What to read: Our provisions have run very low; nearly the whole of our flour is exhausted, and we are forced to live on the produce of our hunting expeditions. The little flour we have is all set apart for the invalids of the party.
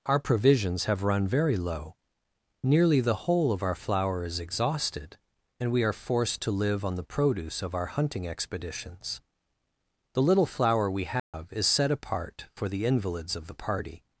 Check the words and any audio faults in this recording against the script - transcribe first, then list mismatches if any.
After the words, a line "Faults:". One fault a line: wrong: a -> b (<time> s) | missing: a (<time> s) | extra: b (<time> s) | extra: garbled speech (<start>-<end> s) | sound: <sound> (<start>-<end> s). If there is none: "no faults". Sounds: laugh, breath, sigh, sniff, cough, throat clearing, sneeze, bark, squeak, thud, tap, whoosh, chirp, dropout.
Our provisions have run very low; nearly the whole of our flour is exhausted, and we are forced to live on the produce of our hunting expeditions. The little flour we have is set apart for the invalids of the party.
Faults:
sound: dropout (11.2-11.3 s)
missing: all (11.7 s)